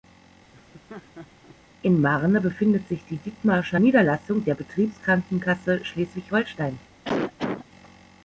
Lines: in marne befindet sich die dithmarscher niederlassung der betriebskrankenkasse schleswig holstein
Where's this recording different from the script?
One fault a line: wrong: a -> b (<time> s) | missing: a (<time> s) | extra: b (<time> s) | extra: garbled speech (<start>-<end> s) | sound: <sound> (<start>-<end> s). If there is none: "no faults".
sound: laugh (0.5-1.6 s)
sound: cough (7.0-7.6 s)